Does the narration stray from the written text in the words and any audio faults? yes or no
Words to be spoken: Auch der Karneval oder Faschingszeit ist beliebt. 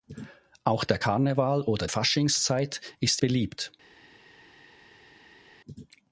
no